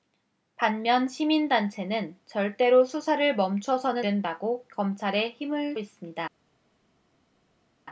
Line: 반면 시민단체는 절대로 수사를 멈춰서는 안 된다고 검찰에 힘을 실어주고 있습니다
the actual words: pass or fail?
fail